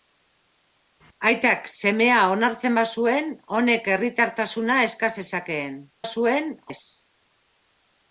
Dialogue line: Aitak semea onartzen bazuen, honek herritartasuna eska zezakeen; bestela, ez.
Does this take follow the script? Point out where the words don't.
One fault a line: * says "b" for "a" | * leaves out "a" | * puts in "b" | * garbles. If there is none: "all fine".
* says "bazuen" for "bestela"